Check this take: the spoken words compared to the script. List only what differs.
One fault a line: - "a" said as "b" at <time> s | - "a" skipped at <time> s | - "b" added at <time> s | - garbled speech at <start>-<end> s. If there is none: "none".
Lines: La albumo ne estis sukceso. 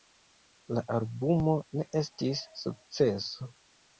none